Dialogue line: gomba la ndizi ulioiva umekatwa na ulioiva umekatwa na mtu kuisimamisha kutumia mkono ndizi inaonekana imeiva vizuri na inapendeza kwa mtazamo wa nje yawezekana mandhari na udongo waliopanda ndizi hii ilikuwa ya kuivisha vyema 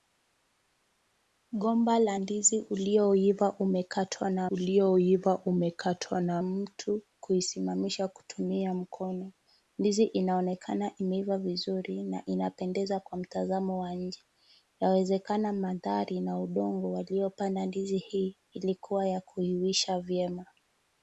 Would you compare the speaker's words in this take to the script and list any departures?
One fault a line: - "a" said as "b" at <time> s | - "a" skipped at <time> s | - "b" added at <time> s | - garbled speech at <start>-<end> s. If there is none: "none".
none